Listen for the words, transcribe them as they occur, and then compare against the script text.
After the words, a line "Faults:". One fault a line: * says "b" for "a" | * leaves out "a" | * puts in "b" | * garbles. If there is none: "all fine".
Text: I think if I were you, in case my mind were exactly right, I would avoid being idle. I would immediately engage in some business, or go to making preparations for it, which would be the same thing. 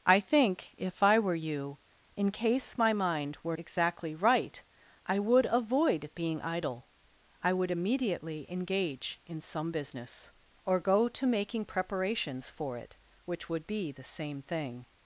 I think if I were you, in case my mind were exactly right, I would avoid being idle. I would immediately engage in some business, or go to making preparations for it, which would be the same thing.
Faults:
all fine